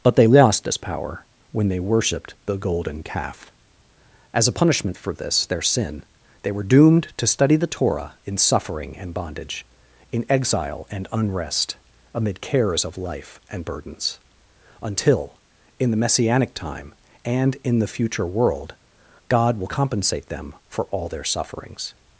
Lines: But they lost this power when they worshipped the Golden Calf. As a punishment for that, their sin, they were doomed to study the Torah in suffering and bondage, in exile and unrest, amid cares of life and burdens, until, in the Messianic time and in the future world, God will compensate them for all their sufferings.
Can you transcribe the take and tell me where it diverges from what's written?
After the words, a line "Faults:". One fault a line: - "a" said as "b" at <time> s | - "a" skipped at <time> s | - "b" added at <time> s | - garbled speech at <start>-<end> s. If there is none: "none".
But they lost this power when they worshipped the Golden Calf. As a punishment for this, their sin, they were doomed to study the Torah in suffering and bondage, in exile and unrest, amid cares of life and burdens, until, in the Messianic time and in the future world, God will compensate them for all their sufferings.
Faults:
- "that" said as "this" at 5.1 s